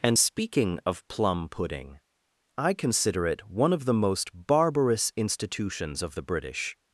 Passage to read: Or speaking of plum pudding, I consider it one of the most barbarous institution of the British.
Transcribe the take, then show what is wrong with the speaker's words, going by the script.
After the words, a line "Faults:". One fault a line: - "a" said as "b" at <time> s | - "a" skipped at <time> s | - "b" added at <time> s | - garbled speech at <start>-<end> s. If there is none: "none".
And speaking of plum pudding, I consider it one of the most barbarous institutions of the British.
Faults:
- "Or" said as "And" at 0.0 s
- "institution" said as "institutions" at 5.2 s